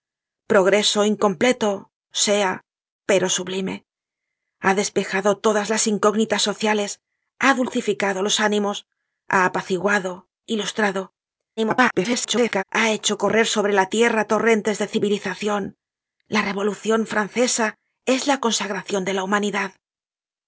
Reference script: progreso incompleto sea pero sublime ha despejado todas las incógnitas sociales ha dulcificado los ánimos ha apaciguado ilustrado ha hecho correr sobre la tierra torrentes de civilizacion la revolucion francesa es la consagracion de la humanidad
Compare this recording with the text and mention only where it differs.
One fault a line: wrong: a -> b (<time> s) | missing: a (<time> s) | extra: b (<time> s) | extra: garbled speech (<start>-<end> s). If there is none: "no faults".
extra: garbled speech (11.6-12.6 s)